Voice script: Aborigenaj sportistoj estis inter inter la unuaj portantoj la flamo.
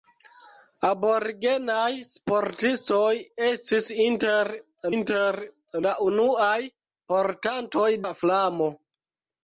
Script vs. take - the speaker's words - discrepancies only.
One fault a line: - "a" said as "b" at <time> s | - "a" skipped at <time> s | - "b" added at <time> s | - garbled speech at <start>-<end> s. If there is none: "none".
none